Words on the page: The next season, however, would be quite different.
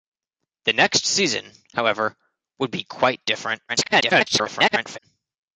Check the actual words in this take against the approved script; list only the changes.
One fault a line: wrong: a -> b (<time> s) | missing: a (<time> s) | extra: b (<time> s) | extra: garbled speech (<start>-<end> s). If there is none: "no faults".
extra: garbled speech (3.7-5.0 s)